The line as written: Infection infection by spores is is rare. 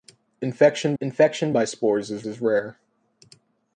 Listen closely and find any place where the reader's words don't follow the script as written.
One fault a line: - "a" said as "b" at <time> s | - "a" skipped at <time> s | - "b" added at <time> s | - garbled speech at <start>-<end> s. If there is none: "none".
none